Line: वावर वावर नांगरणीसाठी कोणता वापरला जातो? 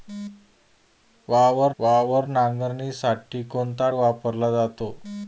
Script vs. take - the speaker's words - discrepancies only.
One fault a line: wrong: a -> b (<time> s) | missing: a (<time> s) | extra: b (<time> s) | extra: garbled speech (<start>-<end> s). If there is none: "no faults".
no faults